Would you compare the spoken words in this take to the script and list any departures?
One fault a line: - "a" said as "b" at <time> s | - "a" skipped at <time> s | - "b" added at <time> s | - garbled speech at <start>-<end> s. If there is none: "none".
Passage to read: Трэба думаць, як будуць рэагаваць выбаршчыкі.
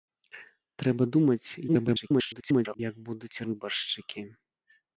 - garbled speech at 1.7-2.8 s
- "рэагаваць" skipped at 3.4 s